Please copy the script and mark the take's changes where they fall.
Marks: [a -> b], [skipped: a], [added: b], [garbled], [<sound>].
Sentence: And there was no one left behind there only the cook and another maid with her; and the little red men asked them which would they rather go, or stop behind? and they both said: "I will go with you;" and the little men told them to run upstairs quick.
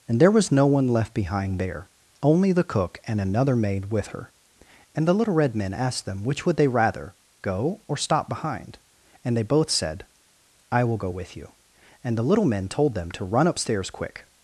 And there was no one left behind there only the cook and another maid with her; and the little red men asked them which would they rather go, or stop behind? and they both said: "I will go with you;" and the little men told them to run upstairs quick.